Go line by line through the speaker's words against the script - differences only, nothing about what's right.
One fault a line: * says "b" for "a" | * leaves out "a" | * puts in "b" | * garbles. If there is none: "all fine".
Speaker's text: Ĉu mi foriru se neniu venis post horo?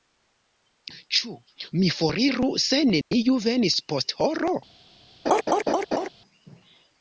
all fine